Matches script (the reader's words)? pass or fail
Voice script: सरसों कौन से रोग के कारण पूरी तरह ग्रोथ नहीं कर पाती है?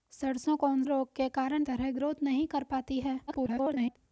fail